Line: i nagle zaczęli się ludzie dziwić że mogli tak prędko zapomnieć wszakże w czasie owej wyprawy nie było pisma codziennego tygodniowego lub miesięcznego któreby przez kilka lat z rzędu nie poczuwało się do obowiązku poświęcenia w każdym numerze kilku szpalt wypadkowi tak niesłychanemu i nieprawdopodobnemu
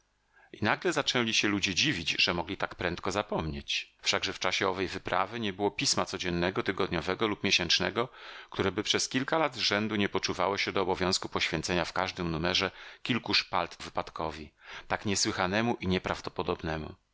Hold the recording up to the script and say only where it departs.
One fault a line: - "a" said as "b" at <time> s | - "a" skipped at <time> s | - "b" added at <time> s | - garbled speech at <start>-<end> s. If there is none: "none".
none